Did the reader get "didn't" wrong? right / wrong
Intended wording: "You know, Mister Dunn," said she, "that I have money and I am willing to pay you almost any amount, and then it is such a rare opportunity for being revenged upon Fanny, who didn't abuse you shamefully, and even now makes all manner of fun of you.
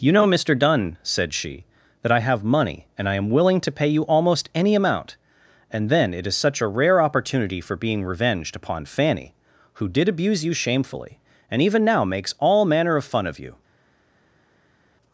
wrong